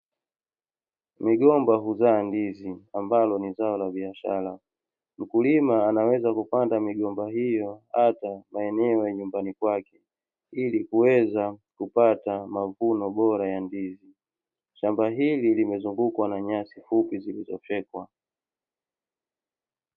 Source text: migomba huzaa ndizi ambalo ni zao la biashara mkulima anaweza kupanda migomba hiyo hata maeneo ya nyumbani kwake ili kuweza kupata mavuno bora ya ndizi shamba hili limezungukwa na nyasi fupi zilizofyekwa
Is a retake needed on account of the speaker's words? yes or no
no